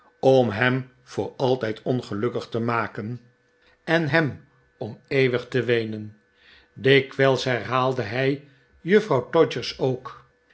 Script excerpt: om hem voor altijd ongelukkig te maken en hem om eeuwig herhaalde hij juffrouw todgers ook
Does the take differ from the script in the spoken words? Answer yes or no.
yes